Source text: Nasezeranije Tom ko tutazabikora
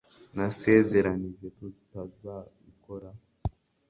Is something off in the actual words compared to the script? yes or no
yes